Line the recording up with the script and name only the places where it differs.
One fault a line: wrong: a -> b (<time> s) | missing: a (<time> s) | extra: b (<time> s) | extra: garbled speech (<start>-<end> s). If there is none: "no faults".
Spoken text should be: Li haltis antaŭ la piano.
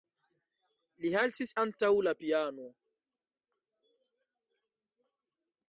no faults